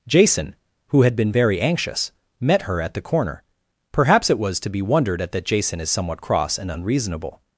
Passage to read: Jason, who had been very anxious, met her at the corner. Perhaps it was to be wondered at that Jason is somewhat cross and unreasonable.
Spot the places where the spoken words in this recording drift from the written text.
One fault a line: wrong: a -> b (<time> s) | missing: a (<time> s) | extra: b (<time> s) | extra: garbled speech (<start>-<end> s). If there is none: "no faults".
no faults